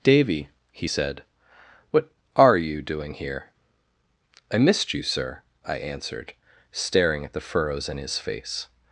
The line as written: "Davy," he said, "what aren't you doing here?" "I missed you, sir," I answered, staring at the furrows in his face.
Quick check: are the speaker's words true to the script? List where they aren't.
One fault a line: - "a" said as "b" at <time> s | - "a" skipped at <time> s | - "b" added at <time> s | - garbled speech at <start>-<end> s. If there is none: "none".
- "aren't" said as "are" at 2.4 s